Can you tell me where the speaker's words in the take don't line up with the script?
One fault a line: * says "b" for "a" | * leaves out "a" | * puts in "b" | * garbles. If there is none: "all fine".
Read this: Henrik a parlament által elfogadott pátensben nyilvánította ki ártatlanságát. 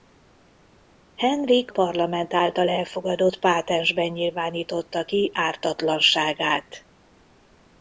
* leaves out "a"